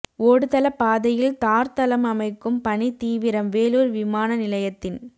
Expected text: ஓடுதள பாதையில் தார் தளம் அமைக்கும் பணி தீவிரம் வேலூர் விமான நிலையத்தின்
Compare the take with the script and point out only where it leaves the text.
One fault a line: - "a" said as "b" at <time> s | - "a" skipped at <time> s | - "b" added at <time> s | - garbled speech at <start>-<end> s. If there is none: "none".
none